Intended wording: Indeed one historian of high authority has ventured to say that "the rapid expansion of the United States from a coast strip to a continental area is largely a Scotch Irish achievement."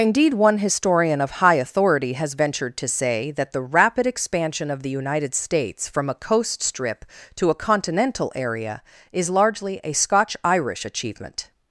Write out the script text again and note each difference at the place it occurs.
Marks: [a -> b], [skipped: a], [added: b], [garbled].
Indeed one historian of high authority has ventured to say that "the rapid expansion of the United States from a coast strip to a continental area is largely a Scotch Irish achievement."